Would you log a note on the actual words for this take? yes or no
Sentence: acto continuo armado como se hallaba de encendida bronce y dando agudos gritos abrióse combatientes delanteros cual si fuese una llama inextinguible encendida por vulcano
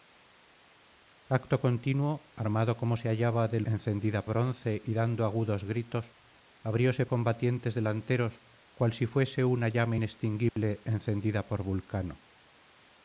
no